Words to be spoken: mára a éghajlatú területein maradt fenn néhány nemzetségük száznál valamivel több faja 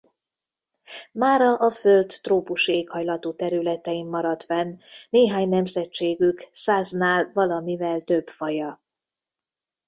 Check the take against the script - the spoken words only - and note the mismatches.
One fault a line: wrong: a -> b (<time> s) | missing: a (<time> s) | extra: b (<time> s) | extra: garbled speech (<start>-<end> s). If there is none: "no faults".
extra: föld trópusi (1.7 s)